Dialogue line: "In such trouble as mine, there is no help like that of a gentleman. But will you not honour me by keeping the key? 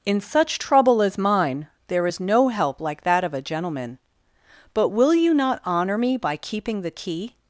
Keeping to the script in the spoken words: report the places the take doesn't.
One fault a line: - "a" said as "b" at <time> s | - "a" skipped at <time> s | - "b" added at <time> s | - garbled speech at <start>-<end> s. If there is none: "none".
none